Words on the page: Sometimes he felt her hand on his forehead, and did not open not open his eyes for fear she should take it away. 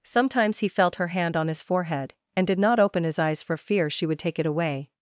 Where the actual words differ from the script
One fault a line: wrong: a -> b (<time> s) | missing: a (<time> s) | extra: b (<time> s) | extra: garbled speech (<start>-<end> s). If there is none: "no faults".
missing: not open (3.0 s)
wrong: should -> would (4.0 s)